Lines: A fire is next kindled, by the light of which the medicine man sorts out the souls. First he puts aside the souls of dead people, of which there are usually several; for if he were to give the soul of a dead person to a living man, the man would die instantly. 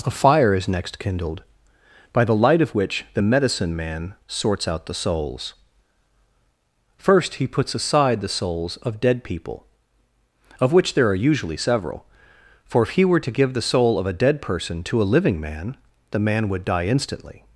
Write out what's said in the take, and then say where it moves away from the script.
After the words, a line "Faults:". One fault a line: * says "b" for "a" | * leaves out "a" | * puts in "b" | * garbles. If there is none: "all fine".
A fire is next kindled, by the light of which the medicine man sorts out the souls. First he puts aside the souls of dead people, of which there are usually several; for if he were to give the soul of a dead person to a living man, the man would die instantly.
Faults:
all fine